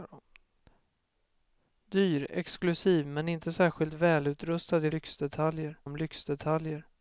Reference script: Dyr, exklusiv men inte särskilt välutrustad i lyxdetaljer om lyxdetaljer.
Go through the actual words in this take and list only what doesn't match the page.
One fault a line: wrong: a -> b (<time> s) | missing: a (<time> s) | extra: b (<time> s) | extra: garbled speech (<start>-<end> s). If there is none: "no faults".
no faults